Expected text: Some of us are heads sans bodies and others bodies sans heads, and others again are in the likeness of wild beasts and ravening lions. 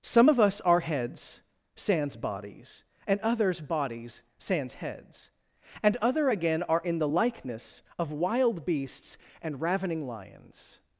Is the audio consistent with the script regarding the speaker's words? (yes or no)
no